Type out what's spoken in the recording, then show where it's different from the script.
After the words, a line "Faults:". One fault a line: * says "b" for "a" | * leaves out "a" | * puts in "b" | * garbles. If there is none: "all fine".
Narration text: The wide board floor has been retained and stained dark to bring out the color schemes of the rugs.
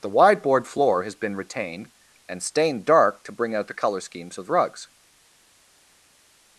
The wide board floor has been retained and stained dark to bring out the color schemes of the rugs.
Faults:
all fine